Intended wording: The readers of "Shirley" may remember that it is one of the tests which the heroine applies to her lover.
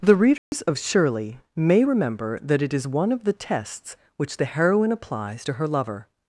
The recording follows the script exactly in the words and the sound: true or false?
false